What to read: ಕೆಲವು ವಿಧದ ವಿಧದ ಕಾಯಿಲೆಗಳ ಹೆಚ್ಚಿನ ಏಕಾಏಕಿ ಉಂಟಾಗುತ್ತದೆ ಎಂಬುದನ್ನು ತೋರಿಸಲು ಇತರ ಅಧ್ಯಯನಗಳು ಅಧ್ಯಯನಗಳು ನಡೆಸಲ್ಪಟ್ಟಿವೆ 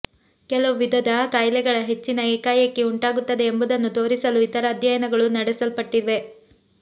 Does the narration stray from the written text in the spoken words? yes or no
yes